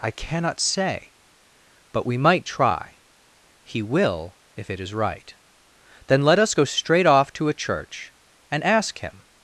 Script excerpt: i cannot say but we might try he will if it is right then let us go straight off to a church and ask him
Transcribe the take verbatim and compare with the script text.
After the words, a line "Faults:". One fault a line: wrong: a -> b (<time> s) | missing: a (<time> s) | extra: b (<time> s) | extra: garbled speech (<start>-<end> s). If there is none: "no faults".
i cannot say but we might try he will if it is right then let us go straight off to a church and ask him
Faults:
no faults